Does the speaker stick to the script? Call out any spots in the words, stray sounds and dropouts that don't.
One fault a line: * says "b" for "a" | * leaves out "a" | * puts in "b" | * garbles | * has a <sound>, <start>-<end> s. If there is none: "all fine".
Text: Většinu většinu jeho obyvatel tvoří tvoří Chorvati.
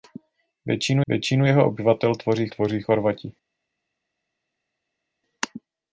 all fine